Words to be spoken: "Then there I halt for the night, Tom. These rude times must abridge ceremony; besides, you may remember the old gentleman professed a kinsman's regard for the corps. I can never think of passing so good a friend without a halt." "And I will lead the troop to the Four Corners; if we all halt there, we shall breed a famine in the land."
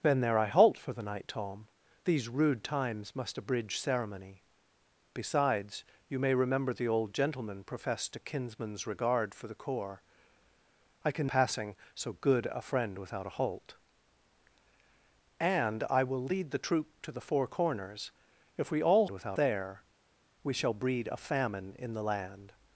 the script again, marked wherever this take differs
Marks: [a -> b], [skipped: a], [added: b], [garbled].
"Then there I halt for the night, Tom. These rude times must abridge ceremony; besides, you may remember the old gentleman professed a kinsman's regard for the corps. I can [skipped: never think of] passing so good a friend without a halt." "And I will lead the troop to the Four Corners; if we all [halt -> without] there, we shall breed a famine in the land."